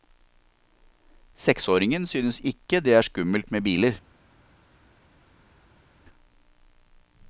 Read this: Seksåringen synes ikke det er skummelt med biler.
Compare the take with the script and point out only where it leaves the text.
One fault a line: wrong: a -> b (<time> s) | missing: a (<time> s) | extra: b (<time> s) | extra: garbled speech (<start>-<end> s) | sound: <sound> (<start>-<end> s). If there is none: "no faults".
no faults